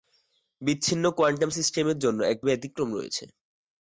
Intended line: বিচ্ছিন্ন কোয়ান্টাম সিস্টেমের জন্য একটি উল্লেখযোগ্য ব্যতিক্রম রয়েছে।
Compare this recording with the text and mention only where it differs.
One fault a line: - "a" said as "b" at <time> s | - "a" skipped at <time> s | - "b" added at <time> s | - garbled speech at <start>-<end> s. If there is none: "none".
- "উল্লেখযোগ্য" skipped at 2.5 s